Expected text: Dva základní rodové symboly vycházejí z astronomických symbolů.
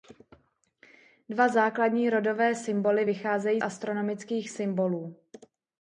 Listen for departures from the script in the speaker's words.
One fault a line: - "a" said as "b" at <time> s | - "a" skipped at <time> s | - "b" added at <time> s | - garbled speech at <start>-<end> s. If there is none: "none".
- "z" skipped at 3.6 s